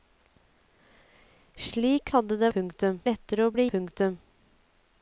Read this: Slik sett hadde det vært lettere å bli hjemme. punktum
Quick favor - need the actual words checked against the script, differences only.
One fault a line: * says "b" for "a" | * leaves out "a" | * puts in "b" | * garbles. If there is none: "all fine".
* leaves out "sett"
* says "punktum" for "vært"
* leaves out "hjemme"